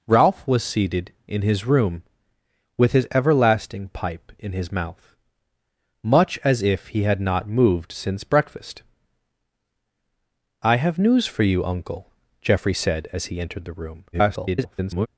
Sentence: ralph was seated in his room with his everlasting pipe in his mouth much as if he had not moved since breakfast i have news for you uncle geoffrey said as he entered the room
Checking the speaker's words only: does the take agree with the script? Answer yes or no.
no